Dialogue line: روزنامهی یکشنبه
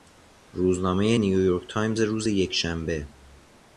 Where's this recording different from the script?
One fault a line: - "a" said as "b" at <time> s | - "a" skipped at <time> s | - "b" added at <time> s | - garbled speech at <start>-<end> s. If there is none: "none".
- "نیویورک تایمز روز" added at 1.2 s